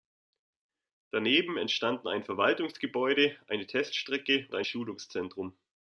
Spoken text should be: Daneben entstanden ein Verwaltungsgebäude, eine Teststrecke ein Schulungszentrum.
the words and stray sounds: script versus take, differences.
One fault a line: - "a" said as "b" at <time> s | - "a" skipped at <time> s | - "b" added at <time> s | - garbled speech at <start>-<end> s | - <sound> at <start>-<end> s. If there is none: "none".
none